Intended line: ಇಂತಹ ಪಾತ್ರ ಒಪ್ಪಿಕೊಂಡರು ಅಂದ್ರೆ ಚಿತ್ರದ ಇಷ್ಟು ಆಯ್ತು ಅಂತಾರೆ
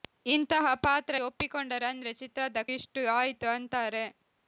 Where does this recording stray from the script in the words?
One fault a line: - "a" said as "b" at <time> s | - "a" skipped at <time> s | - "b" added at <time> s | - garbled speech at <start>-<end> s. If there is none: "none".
none